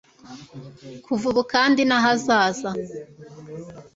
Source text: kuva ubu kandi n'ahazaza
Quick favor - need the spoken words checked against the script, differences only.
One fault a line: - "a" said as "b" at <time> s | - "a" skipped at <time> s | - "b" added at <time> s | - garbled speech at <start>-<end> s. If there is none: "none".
none